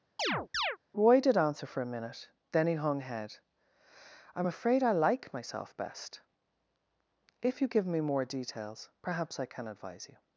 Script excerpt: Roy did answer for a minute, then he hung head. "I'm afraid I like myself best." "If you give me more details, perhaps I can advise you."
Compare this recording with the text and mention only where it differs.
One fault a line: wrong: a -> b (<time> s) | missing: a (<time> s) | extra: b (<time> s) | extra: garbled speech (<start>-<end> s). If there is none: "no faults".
no faults